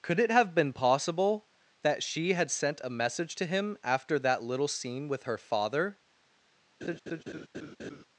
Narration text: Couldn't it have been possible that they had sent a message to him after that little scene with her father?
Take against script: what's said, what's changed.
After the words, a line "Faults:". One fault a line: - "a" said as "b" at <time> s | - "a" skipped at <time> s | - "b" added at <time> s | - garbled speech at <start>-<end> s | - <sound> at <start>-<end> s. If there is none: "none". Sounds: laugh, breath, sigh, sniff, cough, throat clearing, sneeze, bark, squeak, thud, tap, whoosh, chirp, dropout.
Could it have been possible that she had sent a message to him after that little scene with her father?
Faults:
- "Couldn't" said as "Could" at 0.0 s
- "they" said as "she" at 2.0 s
- laugh at 6.8-8.0 s